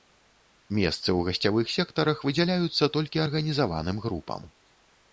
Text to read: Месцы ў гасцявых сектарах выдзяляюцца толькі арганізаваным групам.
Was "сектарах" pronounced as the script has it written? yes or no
yes